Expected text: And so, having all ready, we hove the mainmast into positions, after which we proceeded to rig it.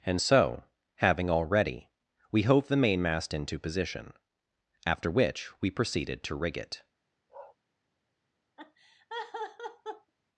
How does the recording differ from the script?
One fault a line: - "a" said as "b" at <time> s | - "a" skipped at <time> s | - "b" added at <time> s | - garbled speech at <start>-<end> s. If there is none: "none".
- "positions" said as "position" at 3.6 s